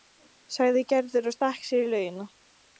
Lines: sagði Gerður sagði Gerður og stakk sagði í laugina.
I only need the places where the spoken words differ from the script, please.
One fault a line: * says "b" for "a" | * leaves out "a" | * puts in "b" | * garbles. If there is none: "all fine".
* leaves out "sagði Gerður"
* says "sér" for "sagði"